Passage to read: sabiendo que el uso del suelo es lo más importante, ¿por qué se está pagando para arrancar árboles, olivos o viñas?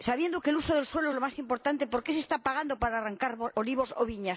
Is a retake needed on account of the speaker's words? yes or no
yes